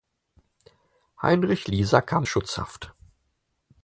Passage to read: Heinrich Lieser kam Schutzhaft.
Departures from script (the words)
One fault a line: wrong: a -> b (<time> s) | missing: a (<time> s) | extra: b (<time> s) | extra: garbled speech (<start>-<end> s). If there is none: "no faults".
no faults